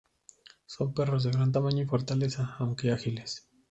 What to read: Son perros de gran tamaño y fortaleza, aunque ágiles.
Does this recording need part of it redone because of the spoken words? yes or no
no